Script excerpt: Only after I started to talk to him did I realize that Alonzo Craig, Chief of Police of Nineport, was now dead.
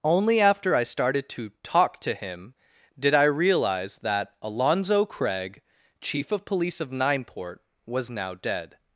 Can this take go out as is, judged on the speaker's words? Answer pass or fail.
pass